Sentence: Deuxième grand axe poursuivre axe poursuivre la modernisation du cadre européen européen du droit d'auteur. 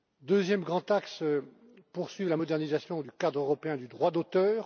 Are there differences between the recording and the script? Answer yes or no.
yes